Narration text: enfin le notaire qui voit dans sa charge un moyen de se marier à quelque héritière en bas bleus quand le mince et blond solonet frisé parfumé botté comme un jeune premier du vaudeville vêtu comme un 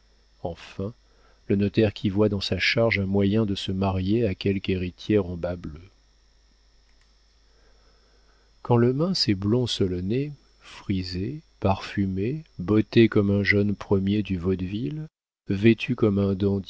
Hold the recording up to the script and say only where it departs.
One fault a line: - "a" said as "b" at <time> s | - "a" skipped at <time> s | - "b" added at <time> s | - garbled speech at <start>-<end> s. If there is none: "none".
none